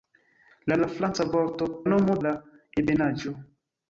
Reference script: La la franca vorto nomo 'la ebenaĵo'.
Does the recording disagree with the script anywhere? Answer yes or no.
no